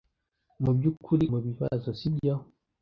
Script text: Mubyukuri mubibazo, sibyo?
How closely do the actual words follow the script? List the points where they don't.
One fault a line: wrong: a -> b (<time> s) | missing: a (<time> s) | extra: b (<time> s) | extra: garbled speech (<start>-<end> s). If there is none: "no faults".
no faults